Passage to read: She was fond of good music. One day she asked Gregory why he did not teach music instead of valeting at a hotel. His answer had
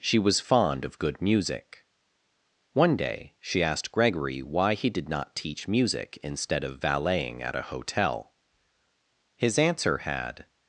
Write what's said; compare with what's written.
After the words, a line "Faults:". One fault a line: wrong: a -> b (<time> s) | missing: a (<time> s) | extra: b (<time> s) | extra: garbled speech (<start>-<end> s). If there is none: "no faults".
She was fond of good music. One day she asked Gregory why he did not teach music instead of valeting at a hotel. His answer had
Faults:
no faults